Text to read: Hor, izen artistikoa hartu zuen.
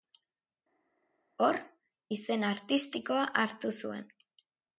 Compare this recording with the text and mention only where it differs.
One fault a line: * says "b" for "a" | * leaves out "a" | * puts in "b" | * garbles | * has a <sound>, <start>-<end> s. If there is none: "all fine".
all fine